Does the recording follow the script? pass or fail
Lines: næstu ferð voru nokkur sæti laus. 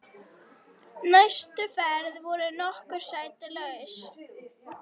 pass